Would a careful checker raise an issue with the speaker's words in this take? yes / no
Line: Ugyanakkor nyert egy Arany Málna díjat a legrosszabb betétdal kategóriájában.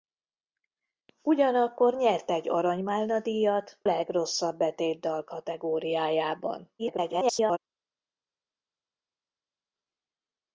yes